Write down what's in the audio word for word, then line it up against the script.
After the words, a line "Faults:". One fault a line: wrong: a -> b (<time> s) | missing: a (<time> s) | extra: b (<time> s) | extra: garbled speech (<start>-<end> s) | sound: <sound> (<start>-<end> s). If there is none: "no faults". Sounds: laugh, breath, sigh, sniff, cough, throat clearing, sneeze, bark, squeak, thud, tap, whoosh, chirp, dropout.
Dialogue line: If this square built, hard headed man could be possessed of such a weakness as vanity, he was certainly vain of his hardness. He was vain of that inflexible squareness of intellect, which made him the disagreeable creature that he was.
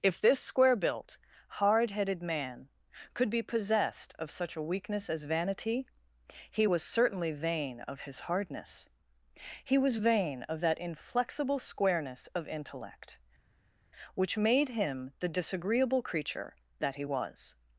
If this square built, hard headed man could be possessed of such a weakness as vanity, he was certainly vain of his hardness. He was vain of that inflexible squareness of intellect, which made him the disagreeable creature that he was.
Faults:
no faults